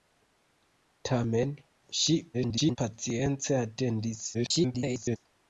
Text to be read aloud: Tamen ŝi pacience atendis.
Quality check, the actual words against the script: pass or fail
fail